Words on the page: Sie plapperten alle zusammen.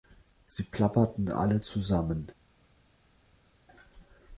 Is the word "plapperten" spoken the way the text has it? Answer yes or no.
yes